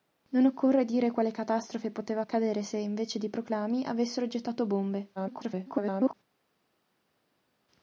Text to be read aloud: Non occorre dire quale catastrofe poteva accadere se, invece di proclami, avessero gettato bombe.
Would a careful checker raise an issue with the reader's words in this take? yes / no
yes